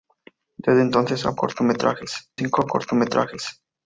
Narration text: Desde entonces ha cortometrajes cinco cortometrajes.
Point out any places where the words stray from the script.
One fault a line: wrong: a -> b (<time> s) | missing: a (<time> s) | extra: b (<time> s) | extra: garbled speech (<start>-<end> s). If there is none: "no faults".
no faults